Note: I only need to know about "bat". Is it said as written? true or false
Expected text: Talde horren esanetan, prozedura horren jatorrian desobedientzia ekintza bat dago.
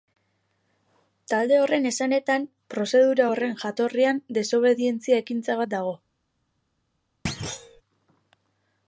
true